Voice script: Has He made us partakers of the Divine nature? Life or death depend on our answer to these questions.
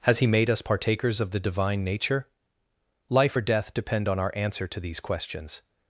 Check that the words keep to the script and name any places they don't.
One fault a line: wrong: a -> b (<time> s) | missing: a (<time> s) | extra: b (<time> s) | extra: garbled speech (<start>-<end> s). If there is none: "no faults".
no faults